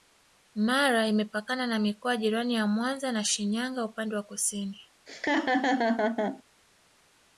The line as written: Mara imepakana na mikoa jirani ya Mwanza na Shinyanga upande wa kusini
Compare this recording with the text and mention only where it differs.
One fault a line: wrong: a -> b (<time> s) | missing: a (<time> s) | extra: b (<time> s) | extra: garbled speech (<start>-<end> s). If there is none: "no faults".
no faults